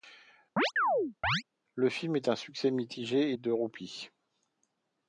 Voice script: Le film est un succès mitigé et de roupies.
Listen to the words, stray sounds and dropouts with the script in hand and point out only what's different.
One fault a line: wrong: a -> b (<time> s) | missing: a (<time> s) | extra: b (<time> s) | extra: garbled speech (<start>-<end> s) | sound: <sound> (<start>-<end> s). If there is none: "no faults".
sound: chirp (0.6-1.4 s)